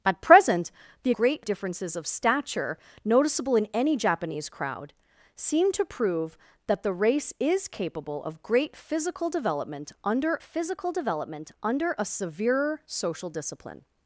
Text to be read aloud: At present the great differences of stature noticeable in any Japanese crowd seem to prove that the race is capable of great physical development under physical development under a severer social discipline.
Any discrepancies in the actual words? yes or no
no